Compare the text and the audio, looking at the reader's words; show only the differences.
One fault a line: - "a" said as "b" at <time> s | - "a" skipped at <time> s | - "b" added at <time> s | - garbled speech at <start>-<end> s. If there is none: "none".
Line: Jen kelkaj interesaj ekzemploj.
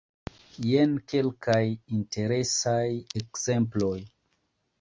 none